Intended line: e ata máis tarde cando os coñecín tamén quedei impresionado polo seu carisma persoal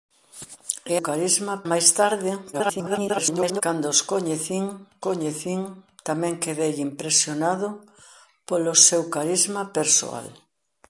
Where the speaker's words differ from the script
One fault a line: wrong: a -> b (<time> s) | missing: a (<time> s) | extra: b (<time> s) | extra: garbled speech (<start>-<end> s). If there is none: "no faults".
wrong: ata -> carisma (1.1 s)
extra: garbled speech (2.5-3.6 s)
extra: coñecín (5.1 s)